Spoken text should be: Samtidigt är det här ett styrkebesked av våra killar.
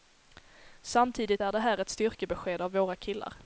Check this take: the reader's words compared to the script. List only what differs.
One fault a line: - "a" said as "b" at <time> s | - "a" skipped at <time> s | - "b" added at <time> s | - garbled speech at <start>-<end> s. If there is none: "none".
none